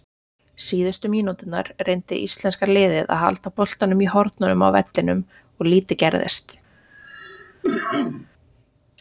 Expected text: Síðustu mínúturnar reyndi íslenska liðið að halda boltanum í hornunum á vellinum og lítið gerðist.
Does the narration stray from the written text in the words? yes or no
no